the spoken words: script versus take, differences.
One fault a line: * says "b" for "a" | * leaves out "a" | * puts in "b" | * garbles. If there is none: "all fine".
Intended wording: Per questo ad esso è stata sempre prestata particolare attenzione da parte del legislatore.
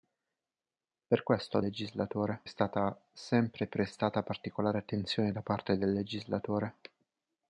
* says "legislatore" for "esso"